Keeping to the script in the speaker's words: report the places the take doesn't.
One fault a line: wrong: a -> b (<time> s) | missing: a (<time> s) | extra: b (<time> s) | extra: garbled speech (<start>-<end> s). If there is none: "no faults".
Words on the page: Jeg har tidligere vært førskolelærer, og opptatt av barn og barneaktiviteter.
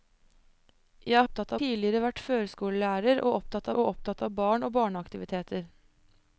wrong: har -> opptatt (1.2 s)
extra: og opptatt (3.8 s)